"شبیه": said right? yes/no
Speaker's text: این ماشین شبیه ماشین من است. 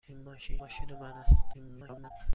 no